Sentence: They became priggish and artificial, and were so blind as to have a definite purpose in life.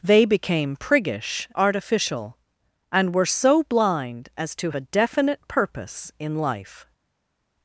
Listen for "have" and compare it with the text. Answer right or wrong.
wrong